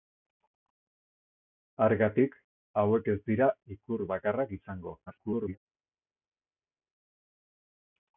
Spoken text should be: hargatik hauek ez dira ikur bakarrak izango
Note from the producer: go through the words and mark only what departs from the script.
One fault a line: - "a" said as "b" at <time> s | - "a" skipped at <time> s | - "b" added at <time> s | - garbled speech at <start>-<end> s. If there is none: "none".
- garbled speech at 5.1-5.6 s